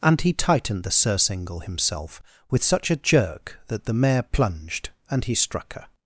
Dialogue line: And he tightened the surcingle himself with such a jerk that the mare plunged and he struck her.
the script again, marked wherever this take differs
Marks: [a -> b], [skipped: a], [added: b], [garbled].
And he tightened the surcingle himself with such a jerk that the mare plunged and he struck her.